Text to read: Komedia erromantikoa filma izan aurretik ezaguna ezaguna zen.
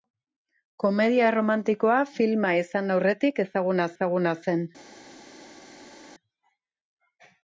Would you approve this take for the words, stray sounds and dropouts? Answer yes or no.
yes